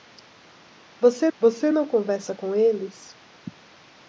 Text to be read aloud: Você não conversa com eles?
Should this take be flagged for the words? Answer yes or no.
yes